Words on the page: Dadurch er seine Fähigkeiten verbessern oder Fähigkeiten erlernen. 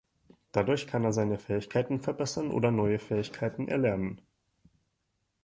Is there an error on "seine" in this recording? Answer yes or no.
no